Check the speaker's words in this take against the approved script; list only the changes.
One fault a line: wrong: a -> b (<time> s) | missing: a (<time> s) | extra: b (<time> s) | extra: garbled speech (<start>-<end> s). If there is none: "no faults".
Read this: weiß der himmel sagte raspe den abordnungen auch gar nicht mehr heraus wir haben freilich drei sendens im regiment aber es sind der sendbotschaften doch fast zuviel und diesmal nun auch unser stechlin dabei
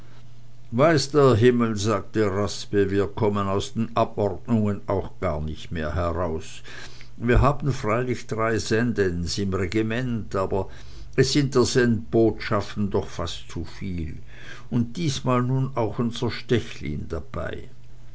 extra: wir kommen aus (2.9 s)